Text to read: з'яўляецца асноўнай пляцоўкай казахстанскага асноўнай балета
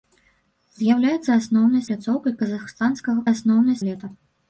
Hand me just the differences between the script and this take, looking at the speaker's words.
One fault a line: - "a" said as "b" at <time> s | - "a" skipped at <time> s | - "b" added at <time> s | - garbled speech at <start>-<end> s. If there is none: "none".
none